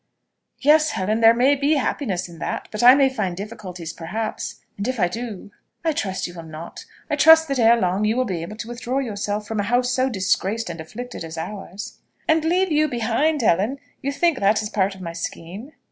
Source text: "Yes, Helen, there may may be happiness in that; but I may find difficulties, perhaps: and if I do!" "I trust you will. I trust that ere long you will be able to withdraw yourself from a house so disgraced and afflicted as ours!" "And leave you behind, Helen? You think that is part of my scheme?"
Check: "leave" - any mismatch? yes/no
no